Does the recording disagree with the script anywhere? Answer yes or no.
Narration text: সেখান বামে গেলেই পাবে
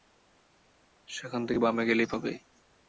yes